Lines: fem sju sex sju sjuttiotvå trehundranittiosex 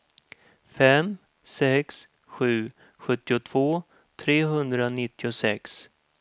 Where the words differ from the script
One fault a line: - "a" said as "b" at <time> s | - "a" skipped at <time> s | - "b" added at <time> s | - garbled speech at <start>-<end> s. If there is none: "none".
- "sju" skipped at 1.2 s